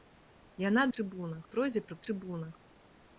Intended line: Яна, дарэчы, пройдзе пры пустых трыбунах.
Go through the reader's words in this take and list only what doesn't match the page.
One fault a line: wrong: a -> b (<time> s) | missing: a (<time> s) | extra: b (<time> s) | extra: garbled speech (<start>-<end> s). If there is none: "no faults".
wrong: дарэчы -> трыбунах (1.0 s)
missing: пустых (2.0 s)